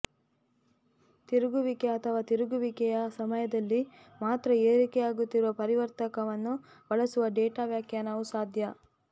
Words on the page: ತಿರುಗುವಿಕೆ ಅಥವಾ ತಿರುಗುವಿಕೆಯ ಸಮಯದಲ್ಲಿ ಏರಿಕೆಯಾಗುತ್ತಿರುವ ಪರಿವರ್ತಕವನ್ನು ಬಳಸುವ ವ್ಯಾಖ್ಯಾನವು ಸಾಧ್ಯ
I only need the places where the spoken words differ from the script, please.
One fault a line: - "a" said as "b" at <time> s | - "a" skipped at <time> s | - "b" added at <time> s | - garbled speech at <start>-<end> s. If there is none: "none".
- "ಮಾತ್ರ" added at 4.2 s
- "ಡೇಟಾ" added at 7.4 s